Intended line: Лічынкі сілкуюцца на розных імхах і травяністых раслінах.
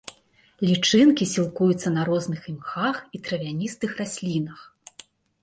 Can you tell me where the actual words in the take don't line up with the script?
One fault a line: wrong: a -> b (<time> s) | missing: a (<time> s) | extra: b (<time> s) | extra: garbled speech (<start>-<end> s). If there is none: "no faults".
no faults